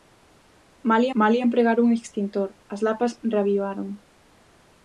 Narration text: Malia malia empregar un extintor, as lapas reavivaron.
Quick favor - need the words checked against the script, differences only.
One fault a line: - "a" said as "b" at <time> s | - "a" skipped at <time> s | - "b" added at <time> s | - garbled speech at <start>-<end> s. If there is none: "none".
none